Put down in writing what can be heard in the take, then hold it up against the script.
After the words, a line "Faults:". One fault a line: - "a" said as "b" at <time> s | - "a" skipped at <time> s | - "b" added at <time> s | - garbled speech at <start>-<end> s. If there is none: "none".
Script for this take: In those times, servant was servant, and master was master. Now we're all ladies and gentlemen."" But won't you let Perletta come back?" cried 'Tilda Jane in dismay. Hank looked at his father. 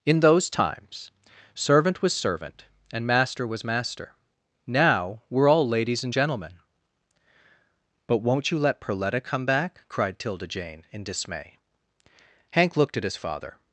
In those times, servant was servant, and master was master. Now we're all ladies and gentlemen."" But won't you let Perletta come back?" cried 'Tilda Jane in dismay. Hank looked at his father.
Faults:
none